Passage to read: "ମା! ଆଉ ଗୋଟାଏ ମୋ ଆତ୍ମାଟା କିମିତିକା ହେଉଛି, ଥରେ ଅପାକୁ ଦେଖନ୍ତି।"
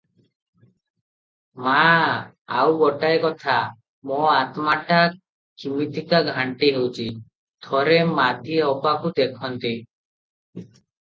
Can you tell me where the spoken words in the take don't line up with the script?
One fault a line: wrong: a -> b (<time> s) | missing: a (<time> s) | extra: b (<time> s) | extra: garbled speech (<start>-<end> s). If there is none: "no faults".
extra: କଥା (3.3 s)
extra: ଘାଣ୍ଟି (6.3 s)
extra: ମାଧୀ (8.2 s)